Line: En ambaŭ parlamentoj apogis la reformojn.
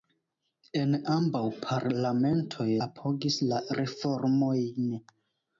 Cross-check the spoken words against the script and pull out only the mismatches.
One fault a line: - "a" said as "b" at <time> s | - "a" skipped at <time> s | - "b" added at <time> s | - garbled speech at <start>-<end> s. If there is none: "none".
none